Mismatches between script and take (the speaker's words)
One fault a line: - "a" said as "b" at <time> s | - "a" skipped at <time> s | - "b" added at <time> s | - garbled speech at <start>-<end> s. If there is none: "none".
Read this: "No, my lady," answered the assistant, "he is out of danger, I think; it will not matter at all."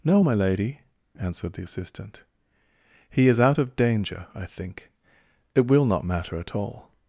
none